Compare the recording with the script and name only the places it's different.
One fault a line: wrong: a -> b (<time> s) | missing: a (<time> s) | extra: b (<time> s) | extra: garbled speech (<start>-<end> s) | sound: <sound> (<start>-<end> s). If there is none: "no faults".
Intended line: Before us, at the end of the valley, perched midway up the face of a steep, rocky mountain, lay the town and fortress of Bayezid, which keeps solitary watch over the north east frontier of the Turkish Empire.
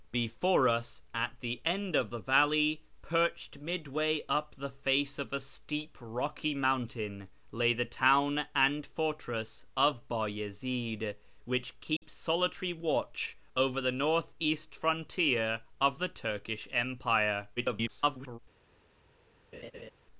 sound: dropout (12.0-12.0 s)
extra: garbled speech (17.6-18.4 s)
sound: laugh (19.5-19.9 s)